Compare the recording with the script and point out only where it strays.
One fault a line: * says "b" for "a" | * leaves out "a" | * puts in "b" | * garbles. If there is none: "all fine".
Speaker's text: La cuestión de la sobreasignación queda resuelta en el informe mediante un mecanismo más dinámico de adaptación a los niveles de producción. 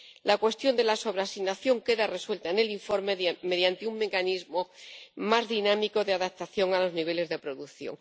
all fine